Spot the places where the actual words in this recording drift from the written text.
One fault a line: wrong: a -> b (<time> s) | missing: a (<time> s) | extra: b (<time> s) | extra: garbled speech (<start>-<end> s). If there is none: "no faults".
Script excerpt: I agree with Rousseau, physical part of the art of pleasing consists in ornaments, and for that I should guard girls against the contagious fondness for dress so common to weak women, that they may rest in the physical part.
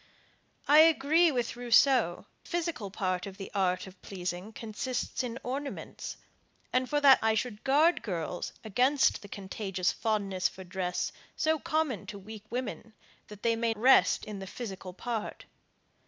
no faults